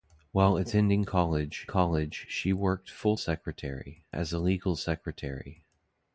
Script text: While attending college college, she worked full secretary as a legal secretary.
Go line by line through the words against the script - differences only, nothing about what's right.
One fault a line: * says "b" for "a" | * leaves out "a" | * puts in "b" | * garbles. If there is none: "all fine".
all fine